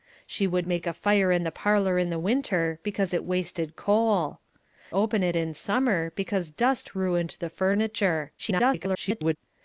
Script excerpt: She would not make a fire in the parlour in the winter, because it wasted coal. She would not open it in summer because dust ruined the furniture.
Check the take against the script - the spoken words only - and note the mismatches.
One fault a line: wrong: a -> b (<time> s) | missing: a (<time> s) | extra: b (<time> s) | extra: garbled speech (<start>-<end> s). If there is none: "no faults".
missing: not (0.7 s)
missing: She would not (4.4 s)
extra: garbled speech (8.4-9.4 s)